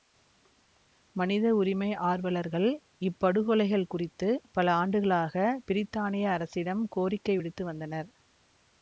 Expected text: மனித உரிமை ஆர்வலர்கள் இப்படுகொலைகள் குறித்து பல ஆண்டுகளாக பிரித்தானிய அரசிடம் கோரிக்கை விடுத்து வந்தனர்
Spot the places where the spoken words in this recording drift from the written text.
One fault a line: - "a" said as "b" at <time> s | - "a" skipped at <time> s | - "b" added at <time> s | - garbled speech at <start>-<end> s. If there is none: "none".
none